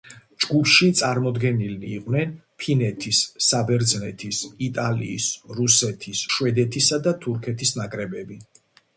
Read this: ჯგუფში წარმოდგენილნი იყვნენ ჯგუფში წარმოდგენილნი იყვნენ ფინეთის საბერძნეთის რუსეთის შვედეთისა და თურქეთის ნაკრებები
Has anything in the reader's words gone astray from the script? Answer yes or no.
yes